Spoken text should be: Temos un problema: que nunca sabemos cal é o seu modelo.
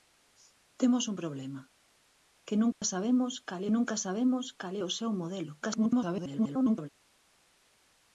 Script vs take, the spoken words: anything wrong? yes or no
yes